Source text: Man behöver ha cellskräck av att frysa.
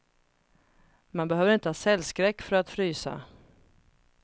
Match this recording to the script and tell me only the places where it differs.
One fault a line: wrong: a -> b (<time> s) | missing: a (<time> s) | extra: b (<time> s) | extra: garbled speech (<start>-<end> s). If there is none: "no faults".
extra: inte (1.5 s)
wrong: av -> för (2.4 s)